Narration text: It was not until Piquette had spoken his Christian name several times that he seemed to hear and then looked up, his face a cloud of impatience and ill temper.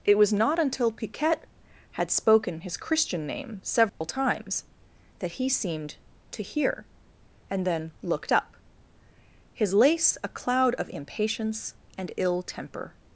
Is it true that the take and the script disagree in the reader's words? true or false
true